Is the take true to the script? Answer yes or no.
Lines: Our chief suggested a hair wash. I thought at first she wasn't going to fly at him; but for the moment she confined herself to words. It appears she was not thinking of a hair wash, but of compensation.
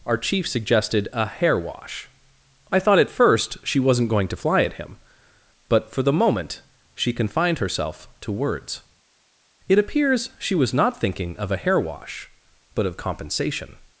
yes